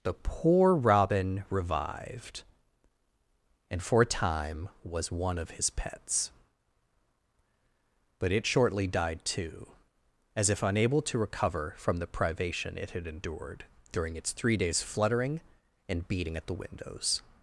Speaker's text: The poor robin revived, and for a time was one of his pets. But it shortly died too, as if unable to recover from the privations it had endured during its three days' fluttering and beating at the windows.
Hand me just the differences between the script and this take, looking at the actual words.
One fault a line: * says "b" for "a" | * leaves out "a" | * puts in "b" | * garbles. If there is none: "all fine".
* says "privation" for "privations"